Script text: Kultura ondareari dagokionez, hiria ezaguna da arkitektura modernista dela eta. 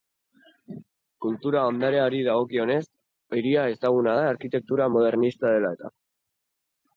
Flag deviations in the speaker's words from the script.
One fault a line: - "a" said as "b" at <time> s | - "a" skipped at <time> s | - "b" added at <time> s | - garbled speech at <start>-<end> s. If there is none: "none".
none